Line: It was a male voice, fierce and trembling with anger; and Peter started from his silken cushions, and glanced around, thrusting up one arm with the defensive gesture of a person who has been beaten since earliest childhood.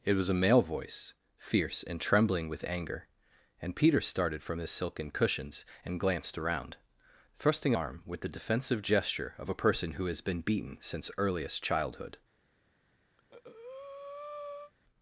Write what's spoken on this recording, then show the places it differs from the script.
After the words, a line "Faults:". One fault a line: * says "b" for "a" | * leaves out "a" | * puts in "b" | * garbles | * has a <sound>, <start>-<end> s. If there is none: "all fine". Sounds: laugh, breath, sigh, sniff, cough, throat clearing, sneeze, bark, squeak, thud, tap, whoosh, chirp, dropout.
It was a male voice, fierce and trembling with anger; and Peter started from his silken cushions, and glanced around, thrusting arm with the defensive gesture of a person who has been beaten since earliest childhood.
Faults:
* leaves out "up one"
* has a breath, 13.2-14.7 s